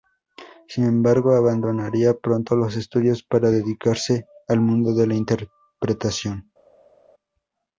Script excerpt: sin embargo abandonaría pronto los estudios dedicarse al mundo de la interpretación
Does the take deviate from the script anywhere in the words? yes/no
yes